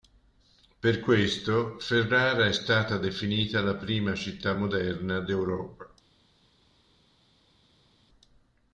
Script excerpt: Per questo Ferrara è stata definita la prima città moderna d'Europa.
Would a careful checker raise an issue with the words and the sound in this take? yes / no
no